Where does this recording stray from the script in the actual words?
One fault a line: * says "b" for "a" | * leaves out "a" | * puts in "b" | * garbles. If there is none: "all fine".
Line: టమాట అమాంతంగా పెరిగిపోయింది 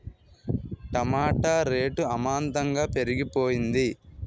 * puts in "రేటు"